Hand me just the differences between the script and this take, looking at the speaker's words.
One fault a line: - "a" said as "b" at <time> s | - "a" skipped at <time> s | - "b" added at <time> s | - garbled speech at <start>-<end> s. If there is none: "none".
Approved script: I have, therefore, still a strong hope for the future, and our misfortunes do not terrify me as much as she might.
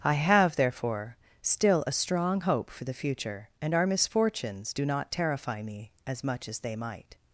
- "she" said as "they" at 6.6 s